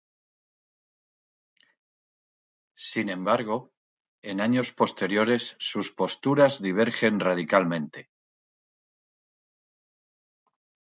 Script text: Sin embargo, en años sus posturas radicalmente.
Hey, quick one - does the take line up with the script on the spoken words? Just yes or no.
no